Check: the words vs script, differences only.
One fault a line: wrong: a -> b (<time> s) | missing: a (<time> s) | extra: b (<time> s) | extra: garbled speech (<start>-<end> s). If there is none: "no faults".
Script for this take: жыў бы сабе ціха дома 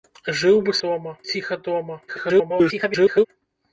wrong: сабе -> дома (0.9 s)
extra: garbled speech (2.1-3.3 s)